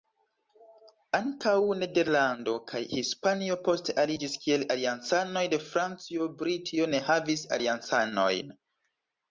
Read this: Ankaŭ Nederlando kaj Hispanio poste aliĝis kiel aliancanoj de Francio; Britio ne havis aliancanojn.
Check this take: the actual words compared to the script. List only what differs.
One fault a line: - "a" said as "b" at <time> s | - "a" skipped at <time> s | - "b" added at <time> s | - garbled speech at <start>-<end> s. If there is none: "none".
none